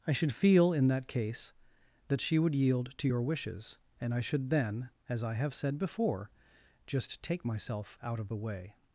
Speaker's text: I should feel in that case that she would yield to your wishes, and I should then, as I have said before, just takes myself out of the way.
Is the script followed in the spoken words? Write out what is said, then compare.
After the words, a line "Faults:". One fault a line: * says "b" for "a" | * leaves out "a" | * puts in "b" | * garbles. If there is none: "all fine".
I should feel in that case that she would yield to your wishes, and I should then, as I have said before, just take myself out of the way.
Faults:
* says "take" for "takes"